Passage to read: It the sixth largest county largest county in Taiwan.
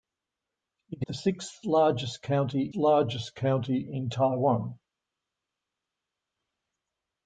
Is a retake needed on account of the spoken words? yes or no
no